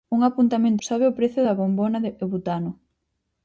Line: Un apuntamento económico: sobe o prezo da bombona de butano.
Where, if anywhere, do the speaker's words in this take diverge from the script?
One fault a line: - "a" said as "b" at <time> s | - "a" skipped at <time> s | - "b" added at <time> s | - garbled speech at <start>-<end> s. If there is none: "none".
- "económico" skipped at 0.8 s